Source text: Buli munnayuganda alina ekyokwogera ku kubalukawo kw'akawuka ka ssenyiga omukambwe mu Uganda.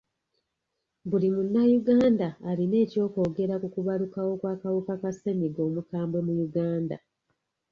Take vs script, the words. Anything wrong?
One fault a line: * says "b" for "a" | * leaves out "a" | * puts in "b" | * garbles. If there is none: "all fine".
all fine